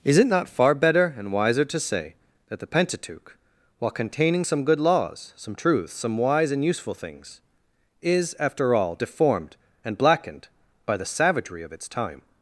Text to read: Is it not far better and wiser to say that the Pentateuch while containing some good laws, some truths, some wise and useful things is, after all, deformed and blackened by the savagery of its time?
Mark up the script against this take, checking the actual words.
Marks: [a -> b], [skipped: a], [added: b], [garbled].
Is it not far better and wiser to say that the Pentateuch while containing some good laws, some truths, some wise and useful things is, after all, deformed and blackened by the savagery of its time?